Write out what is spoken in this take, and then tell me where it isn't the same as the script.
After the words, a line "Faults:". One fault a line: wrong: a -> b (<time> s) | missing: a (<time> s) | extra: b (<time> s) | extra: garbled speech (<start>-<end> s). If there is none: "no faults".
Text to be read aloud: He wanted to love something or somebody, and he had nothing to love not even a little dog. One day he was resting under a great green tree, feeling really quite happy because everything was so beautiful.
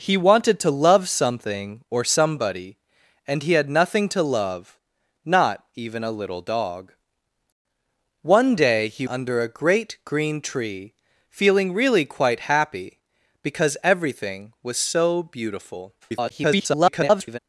He wanted to love something or somebody, and he had nothing to love not even a little dog. One day he under a great green tree, feeling really quite happy because everything was so beautiful. [garbled]
Faults:
missing: was resting (9.1 s)
extra: garbled speech (16.0-17.4 s)